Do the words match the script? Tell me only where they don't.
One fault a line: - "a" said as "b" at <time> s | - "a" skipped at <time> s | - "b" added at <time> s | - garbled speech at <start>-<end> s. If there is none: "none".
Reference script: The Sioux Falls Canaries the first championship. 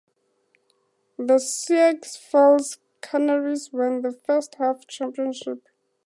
- "won" added at 3.7 s
- "half" added at 4.5 s